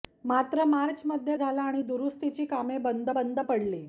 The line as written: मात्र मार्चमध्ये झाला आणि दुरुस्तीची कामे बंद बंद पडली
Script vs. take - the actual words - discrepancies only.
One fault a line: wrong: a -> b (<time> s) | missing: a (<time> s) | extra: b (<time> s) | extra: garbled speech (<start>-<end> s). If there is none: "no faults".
no faults